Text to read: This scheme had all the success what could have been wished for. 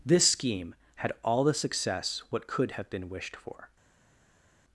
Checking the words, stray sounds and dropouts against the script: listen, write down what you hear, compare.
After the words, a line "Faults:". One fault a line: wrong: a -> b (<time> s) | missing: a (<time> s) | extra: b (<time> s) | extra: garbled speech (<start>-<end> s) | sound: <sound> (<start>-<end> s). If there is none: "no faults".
This scheme had all the success what could have been wished for.
Faults:
no faults